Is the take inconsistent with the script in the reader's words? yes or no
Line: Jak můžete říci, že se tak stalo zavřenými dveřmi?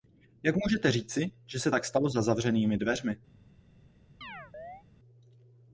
yes